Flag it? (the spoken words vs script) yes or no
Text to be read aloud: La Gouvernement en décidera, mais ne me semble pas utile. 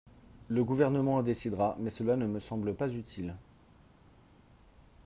yes